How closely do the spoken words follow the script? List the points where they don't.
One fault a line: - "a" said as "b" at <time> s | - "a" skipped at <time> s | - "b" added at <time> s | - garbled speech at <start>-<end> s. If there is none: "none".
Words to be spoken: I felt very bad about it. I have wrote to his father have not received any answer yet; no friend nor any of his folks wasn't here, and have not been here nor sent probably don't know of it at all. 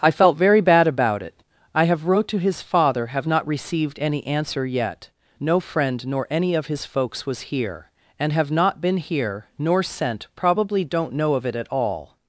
- "wasn't" said as "was" at 7.2 s